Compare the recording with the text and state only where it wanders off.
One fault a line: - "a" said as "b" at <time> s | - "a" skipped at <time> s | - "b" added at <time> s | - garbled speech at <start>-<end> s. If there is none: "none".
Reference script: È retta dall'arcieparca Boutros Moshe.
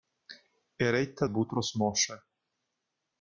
- "dall'arcieparca" skipped at 1.3 s